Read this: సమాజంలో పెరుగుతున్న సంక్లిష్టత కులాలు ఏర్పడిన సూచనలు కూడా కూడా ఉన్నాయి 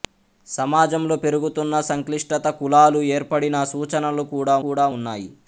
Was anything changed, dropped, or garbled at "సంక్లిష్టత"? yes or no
no